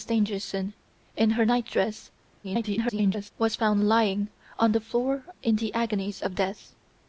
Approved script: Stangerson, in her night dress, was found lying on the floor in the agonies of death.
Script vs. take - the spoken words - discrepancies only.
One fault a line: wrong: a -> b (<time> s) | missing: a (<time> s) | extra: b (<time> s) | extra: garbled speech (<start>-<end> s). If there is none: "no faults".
extra: garbled speech (2.4-3.3 s)